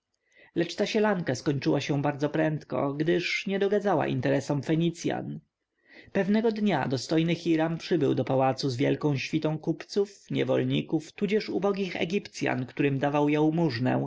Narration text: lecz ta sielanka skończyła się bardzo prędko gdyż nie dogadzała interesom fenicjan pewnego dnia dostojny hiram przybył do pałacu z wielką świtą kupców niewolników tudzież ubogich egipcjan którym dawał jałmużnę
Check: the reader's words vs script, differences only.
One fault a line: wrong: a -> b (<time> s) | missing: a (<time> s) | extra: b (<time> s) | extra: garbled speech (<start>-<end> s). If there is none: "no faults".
no faults